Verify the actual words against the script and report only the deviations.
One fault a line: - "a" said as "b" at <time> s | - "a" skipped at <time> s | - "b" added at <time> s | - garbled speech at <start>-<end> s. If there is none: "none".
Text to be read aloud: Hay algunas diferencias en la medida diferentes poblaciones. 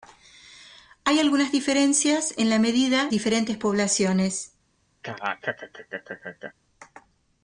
none